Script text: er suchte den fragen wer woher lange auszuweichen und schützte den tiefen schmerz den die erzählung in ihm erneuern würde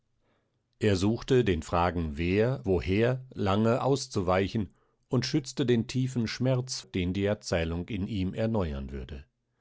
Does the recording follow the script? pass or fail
pass